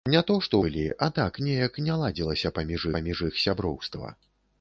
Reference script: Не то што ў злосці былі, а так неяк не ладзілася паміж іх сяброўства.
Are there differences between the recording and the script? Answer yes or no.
yes